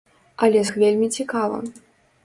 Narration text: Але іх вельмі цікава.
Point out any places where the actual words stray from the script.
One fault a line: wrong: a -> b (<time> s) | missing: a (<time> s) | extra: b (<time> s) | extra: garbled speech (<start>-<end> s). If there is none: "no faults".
no faults